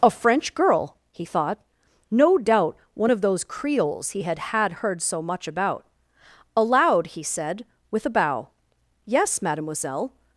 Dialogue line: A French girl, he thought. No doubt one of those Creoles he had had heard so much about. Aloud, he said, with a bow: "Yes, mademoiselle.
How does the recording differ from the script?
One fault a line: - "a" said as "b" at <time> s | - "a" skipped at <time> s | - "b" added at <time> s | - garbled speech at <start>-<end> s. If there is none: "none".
none